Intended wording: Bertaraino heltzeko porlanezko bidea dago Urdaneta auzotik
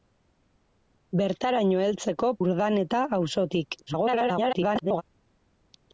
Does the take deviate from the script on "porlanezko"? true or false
true